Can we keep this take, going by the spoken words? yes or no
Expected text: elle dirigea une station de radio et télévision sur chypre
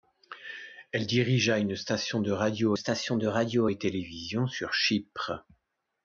no